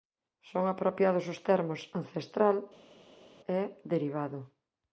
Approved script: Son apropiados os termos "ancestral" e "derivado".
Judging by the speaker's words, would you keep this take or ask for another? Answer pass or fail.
pass